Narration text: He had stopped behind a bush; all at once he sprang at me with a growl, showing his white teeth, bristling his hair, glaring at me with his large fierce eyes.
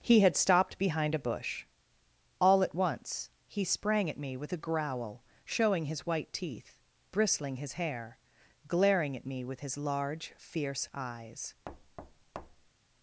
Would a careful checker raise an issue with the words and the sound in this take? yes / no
yes